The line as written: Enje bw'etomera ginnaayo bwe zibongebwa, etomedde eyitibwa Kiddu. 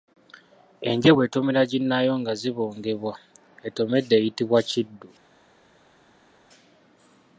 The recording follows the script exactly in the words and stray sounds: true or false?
false